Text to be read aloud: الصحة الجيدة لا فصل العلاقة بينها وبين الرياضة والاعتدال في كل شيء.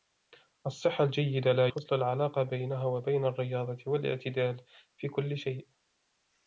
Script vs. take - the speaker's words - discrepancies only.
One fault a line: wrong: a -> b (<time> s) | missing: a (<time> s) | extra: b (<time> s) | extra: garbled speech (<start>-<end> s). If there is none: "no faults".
no faults